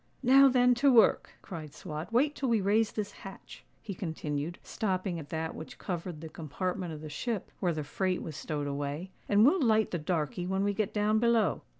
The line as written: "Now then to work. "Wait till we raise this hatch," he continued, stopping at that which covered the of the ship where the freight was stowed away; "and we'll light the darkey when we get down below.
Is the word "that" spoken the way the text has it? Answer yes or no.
yes